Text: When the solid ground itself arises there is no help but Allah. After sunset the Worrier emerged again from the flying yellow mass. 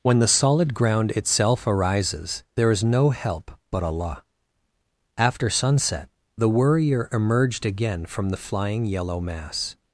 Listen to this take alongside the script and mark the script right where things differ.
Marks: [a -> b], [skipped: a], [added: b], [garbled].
When the solid ground itself arises there is no help but Allah. After sunset the Worrier emerged again from the flying yellow mass.